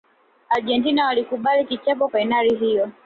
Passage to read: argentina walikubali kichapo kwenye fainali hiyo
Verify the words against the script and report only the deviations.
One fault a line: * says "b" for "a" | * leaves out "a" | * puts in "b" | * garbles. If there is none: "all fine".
* leaves out "kwenye"